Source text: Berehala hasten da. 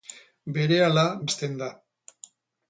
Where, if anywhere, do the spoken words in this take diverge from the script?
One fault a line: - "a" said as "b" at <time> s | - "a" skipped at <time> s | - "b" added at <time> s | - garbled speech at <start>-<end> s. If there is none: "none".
none